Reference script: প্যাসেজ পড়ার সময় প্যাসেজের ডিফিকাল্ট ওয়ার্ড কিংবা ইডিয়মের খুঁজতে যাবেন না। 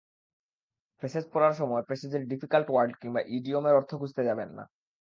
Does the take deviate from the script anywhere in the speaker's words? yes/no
yes